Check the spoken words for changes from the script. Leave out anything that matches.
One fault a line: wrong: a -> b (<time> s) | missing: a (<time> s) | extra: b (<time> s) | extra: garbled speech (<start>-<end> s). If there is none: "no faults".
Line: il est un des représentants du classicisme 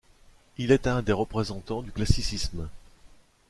no faults